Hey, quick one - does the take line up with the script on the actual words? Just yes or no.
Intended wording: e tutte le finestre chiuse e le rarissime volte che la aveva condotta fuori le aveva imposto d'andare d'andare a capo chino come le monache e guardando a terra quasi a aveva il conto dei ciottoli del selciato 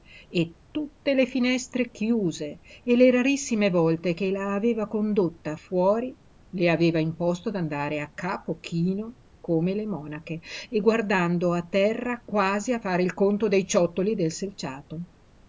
no